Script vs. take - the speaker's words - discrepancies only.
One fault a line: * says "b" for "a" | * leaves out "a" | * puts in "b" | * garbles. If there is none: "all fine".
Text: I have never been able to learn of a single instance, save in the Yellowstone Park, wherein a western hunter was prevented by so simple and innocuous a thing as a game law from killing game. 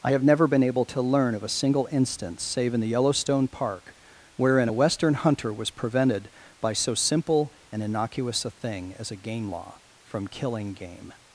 all fine